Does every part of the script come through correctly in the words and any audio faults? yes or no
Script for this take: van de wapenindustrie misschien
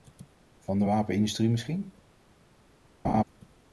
no